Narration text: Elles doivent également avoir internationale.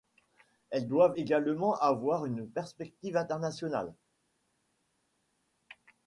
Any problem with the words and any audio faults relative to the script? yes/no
yes